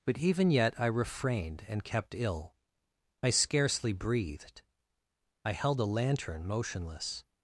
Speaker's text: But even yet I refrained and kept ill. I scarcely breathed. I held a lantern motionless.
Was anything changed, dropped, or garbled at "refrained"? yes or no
no